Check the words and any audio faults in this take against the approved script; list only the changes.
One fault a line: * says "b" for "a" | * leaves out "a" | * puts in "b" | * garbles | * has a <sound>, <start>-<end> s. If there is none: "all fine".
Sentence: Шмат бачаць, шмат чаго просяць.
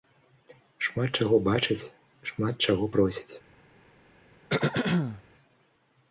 * puts in "чаго"
* has a throat clearing, 4.5-5.2 s